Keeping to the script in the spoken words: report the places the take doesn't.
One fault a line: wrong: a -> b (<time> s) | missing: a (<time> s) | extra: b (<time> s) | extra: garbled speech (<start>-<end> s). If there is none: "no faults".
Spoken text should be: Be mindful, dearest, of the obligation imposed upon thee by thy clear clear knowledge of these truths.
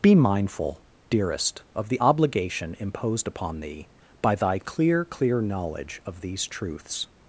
no faults